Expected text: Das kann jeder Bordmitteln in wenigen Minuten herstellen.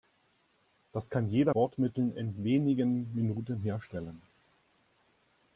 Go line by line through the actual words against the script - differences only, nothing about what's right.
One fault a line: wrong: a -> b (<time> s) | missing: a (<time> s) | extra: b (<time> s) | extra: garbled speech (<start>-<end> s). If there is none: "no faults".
no faults